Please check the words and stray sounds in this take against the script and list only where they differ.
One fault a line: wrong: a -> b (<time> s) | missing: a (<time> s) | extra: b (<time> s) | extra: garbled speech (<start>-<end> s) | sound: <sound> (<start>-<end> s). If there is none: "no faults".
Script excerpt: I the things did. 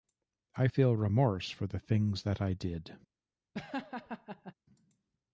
extra: feel remorse for (0.6 s)
extra: that I (2.2 s)
sound: laugh (3.5-4.5 s)